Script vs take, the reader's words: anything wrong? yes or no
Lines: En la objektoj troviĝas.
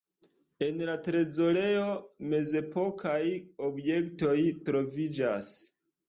yes